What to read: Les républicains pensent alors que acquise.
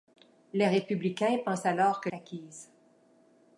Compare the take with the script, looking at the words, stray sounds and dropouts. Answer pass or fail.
pass